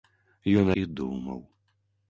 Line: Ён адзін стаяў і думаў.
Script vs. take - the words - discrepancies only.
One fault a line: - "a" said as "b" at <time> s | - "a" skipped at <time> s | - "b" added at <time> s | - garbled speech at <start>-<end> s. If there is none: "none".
- "адзін стаяў" skipped at 0.7 s